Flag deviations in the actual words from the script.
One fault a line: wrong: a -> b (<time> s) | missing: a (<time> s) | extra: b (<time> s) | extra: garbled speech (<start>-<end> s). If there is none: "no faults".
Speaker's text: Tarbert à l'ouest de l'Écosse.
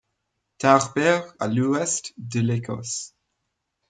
no faults